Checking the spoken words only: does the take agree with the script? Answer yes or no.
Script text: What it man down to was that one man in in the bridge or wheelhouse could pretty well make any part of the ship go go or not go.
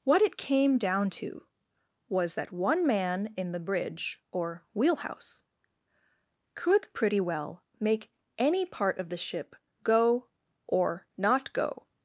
no